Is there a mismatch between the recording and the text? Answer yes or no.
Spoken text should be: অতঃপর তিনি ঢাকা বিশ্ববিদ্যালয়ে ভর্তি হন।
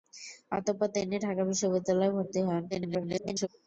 yes